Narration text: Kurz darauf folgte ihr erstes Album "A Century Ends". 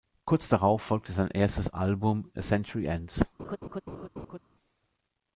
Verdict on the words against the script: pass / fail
fail